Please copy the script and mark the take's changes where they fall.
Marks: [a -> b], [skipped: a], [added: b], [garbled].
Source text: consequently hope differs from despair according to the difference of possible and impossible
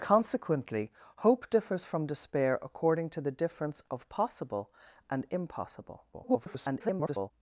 consequently hope differs from despair according to the difference of possible and impossible [garbled]